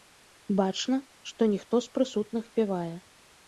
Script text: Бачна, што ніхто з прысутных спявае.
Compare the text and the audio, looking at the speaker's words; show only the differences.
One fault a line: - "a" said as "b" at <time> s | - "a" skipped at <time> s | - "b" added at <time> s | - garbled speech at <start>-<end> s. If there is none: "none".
none